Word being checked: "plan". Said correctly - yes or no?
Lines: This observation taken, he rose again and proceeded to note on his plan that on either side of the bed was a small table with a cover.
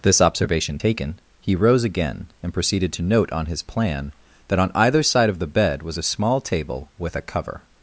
yes